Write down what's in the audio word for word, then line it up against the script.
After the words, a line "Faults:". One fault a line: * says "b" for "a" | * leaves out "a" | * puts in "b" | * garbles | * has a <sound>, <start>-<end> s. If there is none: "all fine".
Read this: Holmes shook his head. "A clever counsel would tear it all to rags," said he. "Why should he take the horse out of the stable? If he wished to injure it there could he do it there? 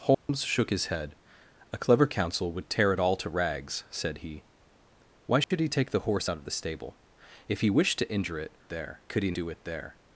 Holmes shook his head. "A clever counsel would tear it all to rags," said he. "Why should he take the horse out of the stable? If he wished to injure it there could he do it there?
Faults:
* has a dropout, 0.1-0.3 s
* has a dropout, 5.4-5.5 s